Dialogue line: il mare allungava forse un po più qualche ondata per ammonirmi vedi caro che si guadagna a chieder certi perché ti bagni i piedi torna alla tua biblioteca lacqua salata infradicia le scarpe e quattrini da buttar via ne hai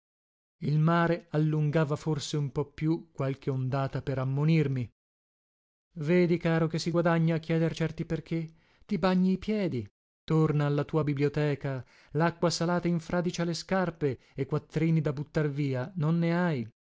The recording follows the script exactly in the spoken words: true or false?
false